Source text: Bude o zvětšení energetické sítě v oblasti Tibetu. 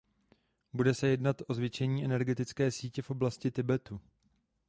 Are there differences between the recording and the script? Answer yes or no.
yes